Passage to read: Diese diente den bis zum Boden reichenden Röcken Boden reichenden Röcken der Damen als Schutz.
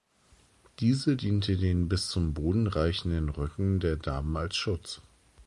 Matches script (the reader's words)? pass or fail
fail